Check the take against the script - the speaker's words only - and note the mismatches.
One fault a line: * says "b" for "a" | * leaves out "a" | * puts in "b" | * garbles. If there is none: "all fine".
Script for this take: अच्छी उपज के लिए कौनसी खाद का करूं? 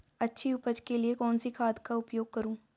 * puts in "उपयोग"